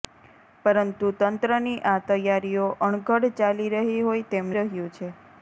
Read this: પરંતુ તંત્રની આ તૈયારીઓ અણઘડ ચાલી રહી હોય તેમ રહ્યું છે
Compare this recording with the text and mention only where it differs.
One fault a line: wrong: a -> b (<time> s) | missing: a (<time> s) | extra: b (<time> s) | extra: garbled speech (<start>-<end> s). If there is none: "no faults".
no faults